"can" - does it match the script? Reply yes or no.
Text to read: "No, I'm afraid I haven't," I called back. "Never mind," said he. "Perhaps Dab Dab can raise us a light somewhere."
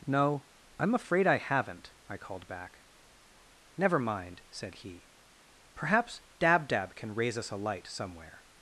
yes